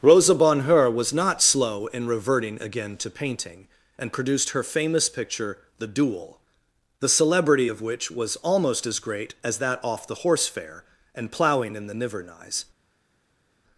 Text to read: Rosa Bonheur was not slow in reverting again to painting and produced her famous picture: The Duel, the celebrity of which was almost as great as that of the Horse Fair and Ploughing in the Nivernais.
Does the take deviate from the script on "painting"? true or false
false